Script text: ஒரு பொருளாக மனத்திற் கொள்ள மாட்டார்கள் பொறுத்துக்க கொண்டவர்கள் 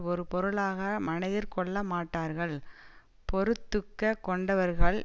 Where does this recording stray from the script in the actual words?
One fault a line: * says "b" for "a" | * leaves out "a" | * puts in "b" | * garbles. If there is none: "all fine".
all fine